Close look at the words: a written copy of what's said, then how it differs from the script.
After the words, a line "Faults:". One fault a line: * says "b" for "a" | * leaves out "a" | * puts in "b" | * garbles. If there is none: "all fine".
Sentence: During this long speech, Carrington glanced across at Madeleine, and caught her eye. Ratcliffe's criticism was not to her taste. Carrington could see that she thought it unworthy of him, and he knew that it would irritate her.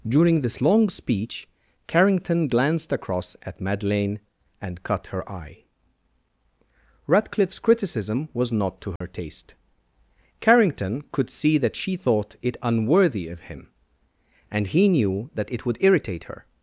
During this long speech, Carrington glanced across at Madeleine, and cut her eye. Ratcliffe's criticism was not to her taste. Carrington could see that she thought it unworthy of him, and he knew that it would irritate her.
Faults:
* says "cut" for "caught"